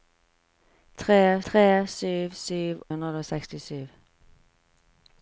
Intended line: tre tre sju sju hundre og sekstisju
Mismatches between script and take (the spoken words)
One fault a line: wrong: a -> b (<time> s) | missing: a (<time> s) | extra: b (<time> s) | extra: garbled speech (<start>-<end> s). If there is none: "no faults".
no faults